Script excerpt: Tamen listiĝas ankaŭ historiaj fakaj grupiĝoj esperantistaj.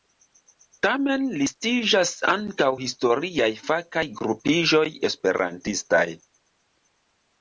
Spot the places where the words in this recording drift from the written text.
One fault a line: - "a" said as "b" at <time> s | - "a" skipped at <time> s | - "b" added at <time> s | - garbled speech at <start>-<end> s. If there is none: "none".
none